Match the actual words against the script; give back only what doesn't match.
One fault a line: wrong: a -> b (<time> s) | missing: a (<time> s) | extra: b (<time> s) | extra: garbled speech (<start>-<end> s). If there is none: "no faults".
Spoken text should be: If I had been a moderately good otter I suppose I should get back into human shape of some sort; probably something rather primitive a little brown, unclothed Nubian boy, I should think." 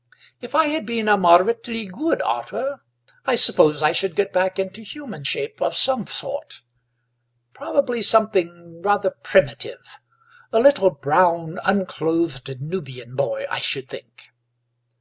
no faults